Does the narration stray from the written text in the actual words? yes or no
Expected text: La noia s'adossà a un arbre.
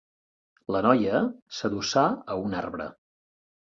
no